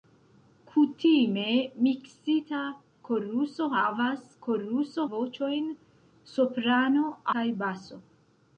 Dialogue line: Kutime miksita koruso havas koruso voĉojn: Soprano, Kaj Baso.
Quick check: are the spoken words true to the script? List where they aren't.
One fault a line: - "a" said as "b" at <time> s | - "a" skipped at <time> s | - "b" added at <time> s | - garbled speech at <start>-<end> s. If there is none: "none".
none